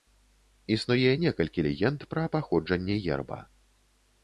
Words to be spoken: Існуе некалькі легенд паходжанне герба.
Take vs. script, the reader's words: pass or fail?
fail